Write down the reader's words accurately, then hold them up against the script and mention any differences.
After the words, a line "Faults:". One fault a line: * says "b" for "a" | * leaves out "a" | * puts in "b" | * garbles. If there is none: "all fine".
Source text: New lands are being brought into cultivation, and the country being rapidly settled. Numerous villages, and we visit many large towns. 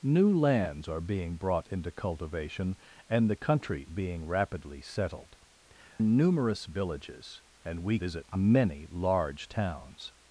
New lands are being brought into cultivation, and the country being rapidly settled. Numerous villages, and we visit many large towns.
Faults:
all fine